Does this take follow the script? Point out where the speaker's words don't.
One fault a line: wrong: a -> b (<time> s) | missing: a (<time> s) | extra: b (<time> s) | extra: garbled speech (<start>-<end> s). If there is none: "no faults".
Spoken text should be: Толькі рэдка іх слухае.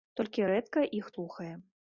no faults